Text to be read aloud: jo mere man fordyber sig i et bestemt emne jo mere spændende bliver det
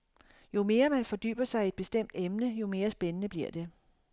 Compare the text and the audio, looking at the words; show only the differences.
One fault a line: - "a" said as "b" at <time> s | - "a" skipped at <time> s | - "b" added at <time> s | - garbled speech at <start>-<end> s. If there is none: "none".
none